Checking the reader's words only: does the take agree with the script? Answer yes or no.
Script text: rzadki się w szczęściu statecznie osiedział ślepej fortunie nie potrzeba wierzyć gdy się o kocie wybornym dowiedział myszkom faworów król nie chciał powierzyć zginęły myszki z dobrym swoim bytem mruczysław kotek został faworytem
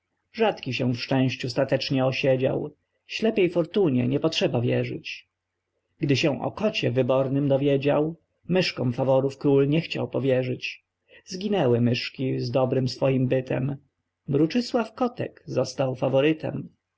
yes